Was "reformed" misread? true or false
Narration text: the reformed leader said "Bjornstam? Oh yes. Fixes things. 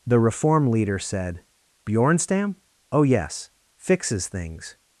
true